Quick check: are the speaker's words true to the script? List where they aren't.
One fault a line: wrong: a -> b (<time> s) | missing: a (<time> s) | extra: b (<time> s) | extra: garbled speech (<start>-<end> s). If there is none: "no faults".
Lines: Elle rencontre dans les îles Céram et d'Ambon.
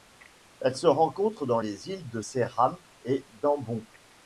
extra: se (0.8 s)
extra: de (2.1 s)